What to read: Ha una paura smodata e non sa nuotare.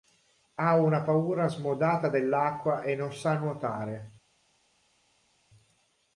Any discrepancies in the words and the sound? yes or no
yes